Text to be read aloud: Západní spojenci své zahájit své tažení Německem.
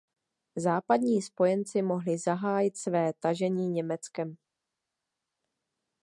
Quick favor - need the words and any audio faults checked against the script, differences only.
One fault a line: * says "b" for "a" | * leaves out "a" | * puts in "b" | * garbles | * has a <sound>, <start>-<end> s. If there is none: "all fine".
* says "mohli" for "své"